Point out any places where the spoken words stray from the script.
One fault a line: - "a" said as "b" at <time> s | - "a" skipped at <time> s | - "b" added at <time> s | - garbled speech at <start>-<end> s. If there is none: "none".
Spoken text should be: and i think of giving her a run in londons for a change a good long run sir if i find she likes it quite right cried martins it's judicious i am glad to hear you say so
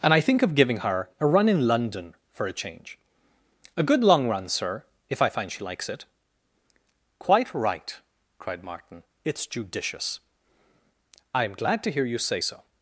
- "londons" said as "london" at 1.7 s
- "martins" said as "martin" at 8.6 s